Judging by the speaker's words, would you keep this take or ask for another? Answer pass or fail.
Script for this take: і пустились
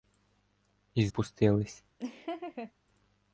pass